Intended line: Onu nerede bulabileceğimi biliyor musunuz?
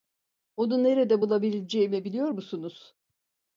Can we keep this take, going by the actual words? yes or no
yes